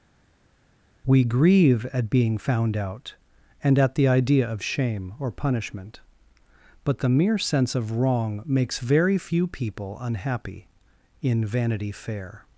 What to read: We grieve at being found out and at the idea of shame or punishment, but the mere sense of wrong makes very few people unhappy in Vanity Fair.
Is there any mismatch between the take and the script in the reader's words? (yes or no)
no